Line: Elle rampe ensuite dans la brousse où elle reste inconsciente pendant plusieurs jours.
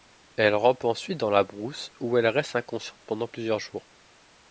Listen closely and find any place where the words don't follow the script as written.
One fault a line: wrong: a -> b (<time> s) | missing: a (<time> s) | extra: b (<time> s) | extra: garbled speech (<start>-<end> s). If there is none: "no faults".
no faults